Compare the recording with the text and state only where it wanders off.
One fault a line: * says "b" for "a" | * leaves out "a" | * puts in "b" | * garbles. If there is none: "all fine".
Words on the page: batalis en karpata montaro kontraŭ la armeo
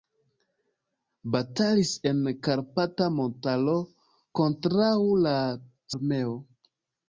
all fine